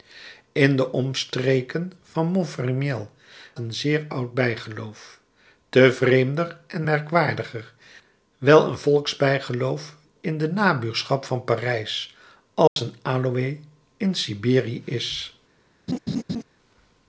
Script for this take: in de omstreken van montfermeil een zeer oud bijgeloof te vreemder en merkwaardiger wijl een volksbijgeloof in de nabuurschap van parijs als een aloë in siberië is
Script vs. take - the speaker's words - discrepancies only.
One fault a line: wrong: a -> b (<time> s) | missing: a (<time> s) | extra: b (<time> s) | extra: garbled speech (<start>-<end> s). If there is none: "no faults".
no faults